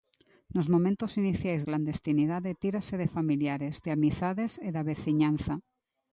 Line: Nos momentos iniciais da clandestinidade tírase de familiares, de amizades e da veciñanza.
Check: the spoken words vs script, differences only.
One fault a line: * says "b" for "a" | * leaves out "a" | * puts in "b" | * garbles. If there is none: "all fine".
* leaves out "da"